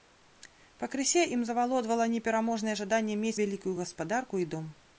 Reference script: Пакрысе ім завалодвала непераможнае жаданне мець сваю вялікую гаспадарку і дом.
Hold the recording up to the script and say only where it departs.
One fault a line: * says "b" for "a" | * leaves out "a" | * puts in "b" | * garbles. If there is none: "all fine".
* leaves out "сваю"